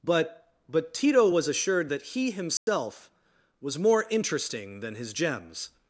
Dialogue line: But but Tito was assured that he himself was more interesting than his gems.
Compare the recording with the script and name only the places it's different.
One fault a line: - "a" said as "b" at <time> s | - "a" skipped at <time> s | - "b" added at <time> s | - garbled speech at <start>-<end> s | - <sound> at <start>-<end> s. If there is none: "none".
- dropout at 2.6-2.7 s